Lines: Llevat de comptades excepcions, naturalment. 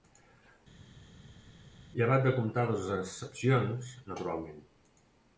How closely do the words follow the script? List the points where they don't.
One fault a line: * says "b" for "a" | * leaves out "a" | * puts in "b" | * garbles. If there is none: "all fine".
all fine